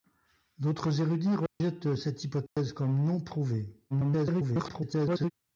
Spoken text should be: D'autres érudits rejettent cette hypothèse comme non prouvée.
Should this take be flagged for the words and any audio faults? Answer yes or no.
yes